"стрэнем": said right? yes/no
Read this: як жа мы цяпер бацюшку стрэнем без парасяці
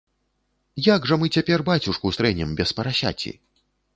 yes